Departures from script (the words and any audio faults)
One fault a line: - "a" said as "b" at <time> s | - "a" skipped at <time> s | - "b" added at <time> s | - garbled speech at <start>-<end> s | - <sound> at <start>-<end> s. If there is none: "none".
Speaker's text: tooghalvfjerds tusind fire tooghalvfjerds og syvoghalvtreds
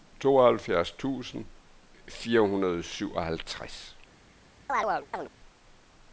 - "tooghalvfjerds" said as "hundrede" at 2.4 s
- chirp at 4.7-5.3 s